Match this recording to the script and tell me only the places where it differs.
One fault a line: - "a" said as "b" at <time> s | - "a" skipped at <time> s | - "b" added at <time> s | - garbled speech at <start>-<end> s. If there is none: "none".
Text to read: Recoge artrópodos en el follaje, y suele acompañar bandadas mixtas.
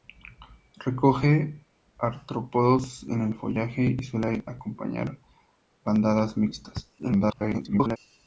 - garbled speech at 7.0-8.0 s